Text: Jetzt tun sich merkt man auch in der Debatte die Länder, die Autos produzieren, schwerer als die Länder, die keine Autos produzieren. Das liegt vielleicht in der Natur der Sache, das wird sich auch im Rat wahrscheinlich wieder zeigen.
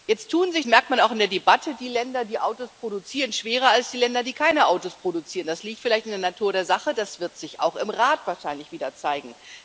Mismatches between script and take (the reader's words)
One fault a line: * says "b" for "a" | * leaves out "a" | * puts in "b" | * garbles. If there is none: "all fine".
all fine